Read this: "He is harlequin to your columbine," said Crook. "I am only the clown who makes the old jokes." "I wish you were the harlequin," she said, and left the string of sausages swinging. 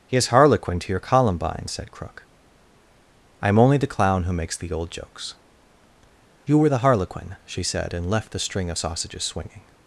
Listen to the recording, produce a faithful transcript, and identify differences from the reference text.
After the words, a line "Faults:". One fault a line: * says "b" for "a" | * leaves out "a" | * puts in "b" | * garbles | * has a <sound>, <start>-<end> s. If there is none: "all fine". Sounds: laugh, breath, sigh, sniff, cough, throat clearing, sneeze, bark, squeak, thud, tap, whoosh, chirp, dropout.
"He is harlequin to your columbine," said Crook. "I am only the clown who makes the old jokes." "you were the harlequin," she said, and left the string of sausages swinging.
Faults:
* leaves out "I wish"